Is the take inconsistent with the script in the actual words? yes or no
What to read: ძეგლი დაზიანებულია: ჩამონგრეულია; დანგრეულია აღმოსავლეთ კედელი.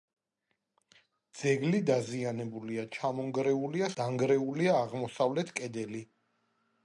no